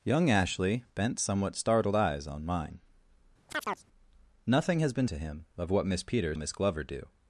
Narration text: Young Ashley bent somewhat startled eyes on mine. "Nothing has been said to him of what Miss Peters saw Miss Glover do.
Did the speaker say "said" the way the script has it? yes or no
no